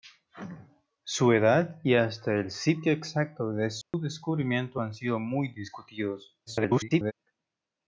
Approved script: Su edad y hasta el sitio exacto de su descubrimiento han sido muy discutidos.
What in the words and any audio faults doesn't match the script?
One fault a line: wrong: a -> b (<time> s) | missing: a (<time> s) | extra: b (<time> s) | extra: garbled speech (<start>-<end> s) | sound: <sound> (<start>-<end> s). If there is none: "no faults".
sound: dropout (3.8-3.9 s)
extra: garbled speech (6.5-7.1 s)